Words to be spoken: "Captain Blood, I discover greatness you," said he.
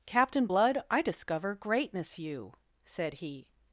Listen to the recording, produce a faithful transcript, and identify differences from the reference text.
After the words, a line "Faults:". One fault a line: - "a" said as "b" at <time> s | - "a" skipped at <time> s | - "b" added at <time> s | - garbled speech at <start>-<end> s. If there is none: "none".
"Captain Blood, I discover greatness you," said he.
Faults:
none